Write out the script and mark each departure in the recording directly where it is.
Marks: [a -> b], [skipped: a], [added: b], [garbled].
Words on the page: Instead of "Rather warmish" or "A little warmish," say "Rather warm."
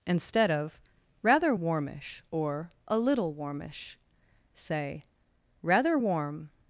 Instead of "Rather warmish" or "A little warmish," say "Rather warm."